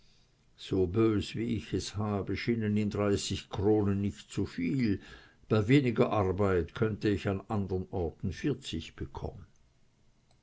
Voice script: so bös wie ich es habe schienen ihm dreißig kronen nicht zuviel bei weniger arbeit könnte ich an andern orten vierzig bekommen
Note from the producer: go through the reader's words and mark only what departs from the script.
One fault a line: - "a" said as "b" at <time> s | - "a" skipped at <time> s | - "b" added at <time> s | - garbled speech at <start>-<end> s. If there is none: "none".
none